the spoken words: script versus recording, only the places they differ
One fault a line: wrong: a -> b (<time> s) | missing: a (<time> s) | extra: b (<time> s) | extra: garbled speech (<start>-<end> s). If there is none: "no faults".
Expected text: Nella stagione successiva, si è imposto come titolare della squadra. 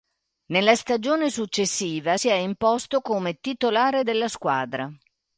no faults